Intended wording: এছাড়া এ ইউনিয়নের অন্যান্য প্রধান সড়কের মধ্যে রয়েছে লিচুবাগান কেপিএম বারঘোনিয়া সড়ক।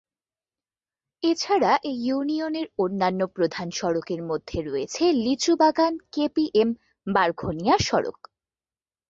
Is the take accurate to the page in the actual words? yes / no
yes